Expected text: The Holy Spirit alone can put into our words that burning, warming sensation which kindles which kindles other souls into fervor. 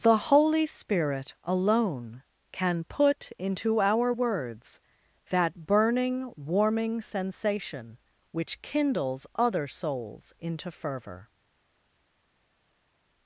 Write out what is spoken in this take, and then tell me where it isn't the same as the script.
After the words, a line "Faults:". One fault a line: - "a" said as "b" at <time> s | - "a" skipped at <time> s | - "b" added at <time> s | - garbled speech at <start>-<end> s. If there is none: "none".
The Holy Spirit alone can put into our words that burning, warming sensation which kindles other souls into fervor.
Faults:
- "which kindles" skipped at 9.3 s